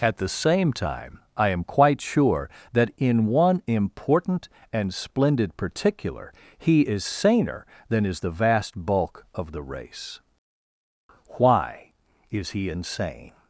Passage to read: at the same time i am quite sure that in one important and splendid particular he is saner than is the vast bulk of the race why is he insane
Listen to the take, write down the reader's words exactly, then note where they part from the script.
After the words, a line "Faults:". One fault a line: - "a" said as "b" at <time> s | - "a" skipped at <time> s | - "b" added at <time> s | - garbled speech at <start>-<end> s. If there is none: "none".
at the same time i am quite sure that in one important and splendid particular he is saner than is the vast bulk of the race why is he insane
Faults:
none